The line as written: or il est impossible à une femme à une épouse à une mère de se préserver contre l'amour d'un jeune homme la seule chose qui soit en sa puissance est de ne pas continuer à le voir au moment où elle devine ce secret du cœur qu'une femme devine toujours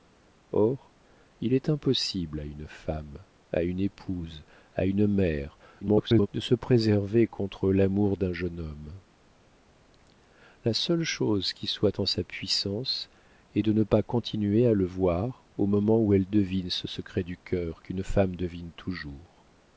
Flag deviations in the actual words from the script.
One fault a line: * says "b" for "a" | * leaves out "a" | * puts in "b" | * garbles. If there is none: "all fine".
* garbles